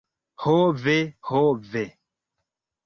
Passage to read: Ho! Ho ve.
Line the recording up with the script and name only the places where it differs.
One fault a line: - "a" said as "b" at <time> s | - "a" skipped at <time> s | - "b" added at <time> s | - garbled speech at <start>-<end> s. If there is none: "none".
- "ve" added at 0.7 s